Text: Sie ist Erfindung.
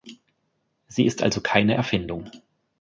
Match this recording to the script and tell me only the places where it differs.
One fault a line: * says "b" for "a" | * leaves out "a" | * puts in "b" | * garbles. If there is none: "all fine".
* puts in "also keine"